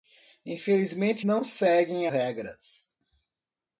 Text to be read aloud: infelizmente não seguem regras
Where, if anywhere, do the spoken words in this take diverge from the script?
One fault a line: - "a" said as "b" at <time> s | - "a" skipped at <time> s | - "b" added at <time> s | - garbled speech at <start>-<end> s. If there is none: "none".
none